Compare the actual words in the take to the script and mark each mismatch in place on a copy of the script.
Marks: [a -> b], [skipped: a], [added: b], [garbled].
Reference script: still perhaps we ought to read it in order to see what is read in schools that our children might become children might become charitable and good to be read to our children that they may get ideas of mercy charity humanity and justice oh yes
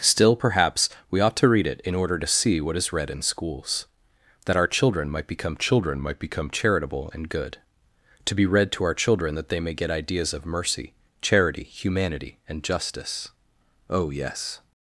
still perhaps we ought to read it in order to see what is read in schools that our children might become children might become charitable and good to be read to our children that they may get ideas of mercy charity humanity and justice oh yes